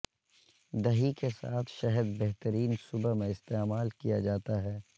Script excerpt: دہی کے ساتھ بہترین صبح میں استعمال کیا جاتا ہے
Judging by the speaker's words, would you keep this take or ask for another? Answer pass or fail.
fail